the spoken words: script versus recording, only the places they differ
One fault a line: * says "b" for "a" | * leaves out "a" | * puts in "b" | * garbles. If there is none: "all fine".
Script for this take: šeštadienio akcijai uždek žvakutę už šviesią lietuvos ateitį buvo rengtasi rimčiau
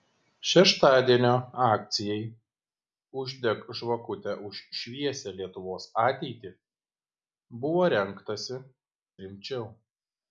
all fine